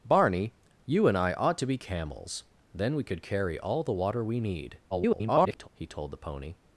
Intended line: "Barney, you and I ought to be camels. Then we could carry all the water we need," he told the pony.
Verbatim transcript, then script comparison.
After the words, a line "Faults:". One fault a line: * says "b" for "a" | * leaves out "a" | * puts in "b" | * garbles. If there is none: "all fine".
"Barney, you and I ought to be camels. Then we could carry all the water we need," [garbled] he told the pony.
Faults:
* garbles